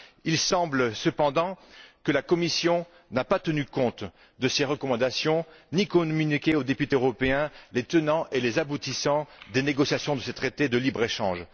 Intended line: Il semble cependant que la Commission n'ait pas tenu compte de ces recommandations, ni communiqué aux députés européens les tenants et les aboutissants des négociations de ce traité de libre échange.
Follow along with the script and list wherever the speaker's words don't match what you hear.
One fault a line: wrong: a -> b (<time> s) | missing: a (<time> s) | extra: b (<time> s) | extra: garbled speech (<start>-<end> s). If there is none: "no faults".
no faults